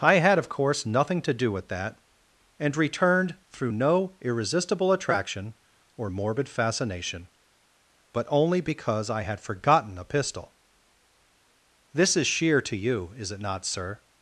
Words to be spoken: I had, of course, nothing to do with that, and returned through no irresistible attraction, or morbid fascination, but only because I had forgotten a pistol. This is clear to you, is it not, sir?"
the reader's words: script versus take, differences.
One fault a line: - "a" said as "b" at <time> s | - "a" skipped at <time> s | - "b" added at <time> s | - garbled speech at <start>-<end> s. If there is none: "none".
- "clear" said as "sheer" at 12.3 s